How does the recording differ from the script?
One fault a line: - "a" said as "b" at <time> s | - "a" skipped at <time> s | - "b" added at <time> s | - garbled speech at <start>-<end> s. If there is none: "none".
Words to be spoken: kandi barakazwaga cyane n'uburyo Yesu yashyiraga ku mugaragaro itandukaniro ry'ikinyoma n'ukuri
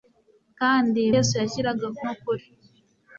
- "barakazwaga cyane n'uburyo" skipped at 1.0 s
- "mugaragaro itandukaniro ry'ikinyoma" skipped at 2.0 s